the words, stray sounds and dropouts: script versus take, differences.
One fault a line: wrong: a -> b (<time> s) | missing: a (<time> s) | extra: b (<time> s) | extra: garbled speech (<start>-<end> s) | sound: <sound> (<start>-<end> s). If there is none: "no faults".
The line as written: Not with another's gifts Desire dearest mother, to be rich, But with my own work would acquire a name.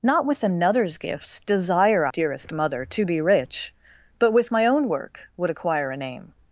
no faults